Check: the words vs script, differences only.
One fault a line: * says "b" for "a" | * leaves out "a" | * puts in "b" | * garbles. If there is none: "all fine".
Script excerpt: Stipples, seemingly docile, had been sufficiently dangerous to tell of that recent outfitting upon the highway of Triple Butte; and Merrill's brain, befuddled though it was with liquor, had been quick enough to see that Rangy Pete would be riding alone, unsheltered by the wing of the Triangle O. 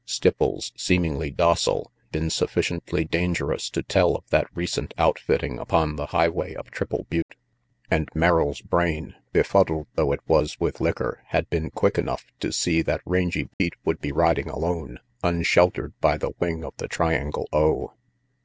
* leaves out "had"